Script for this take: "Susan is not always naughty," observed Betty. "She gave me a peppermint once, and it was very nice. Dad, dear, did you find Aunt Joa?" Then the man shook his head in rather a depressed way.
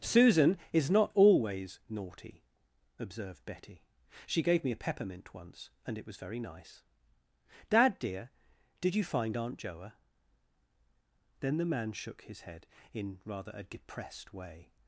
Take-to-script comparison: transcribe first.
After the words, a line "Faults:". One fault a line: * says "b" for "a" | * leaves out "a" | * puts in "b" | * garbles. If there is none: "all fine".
"Susan is not always naughty," observed Betty. "She gave me a peppermint once, and it was very nice. Dad, dear, did you find Aunt Joa?" Then the man shook his head in rather a depressed way.
Faults:
all fine